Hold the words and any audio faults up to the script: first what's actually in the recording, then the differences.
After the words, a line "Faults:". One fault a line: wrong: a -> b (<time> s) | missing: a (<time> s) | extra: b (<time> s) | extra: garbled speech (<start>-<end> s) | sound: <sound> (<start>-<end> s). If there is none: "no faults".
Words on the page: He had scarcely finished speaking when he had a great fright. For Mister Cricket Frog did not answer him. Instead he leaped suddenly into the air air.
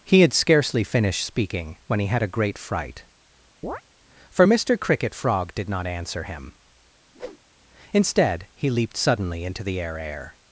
He had scarcely finished speaking when he had a great fright. For Mister Cricket Frog did not answer him. Instead he leaped suddenly into the air air.
Faults:
sound: chirp (3.6-3.8 s)
sound: whoosh (7.1-7.4 s)